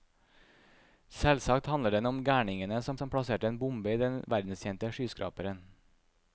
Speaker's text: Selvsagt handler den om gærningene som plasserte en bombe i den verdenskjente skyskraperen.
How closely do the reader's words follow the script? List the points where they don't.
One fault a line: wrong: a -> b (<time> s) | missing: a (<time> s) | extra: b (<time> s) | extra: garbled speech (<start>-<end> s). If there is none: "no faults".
extra: som (3.0 s)